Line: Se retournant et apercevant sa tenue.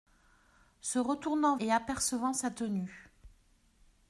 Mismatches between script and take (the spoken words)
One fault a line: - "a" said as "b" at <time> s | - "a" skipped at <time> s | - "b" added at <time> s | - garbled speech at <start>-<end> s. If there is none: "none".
none